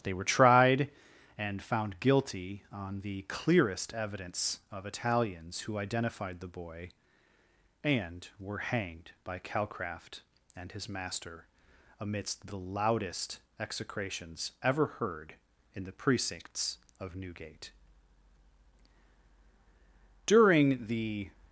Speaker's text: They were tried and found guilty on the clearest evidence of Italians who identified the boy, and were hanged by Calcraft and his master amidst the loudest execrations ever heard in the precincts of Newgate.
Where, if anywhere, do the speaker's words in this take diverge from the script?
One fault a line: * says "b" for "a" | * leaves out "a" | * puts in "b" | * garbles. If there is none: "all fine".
* puts in "During the"